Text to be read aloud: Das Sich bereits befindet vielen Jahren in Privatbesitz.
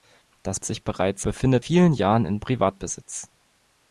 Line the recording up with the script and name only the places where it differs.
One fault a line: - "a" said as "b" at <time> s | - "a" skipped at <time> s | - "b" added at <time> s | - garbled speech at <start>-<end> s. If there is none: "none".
none